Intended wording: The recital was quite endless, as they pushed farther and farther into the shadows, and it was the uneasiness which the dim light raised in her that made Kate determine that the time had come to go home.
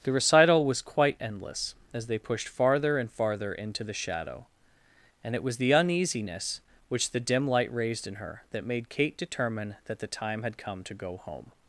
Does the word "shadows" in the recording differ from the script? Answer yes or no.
yes